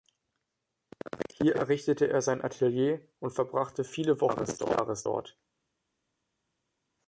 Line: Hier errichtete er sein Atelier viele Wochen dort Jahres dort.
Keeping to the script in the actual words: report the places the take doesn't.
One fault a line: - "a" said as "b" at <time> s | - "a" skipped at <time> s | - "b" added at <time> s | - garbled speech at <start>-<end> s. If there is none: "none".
- "und verbrachte" added at 3.2 s
- "dort" said as "des" at 4.5 s